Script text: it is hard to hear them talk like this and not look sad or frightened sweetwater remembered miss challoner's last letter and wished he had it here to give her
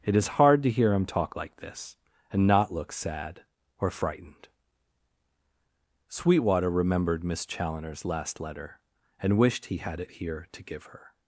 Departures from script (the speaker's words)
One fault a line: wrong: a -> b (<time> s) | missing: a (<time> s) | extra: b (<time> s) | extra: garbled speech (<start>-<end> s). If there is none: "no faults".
wrong: them -> him (0.9 s)